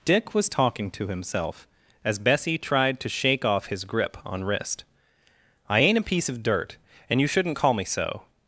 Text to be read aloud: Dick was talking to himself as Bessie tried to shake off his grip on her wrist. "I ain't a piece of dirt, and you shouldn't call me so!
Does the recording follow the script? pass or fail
fail